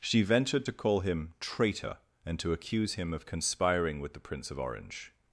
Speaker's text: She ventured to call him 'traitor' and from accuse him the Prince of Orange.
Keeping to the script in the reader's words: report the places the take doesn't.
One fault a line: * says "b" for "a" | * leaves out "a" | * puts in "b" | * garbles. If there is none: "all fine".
* says "to" for "from"
* puts in "of conspiring with"